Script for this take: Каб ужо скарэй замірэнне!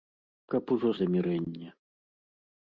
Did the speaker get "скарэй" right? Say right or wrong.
wrong